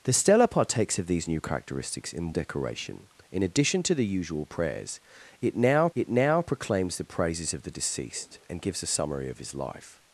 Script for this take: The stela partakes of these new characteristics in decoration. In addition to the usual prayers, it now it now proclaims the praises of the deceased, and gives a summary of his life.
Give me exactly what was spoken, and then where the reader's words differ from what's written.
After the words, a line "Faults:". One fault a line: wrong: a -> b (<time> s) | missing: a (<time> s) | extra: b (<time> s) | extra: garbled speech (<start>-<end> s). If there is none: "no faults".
The stela partakes of these new characteristics in decoration. In addition to the usual prayers, it now it now proclaims the praises of the deceased, and gives a summary of his life.
Faults:
no faults